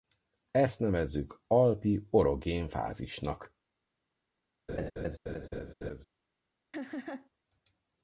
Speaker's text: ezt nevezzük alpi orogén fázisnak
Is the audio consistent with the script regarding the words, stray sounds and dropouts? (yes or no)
no